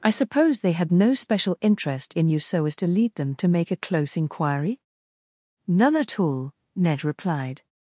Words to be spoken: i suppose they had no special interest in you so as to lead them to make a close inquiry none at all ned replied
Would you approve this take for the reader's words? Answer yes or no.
yes